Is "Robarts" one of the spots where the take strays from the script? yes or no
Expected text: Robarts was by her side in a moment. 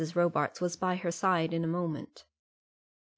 no